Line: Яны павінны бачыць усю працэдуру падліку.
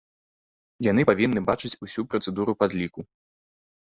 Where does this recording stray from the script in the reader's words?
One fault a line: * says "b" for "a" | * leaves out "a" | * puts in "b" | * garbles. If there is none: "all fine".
all fine